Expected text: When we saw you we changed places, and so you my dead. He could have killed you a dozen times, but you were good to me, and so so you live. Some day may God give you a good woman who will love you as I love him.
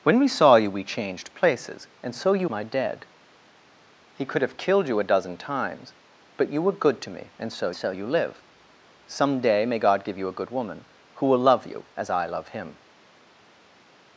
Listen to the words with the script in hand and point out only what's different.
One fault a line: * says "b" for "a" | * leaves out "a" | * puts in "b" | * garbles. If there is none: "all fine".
all fine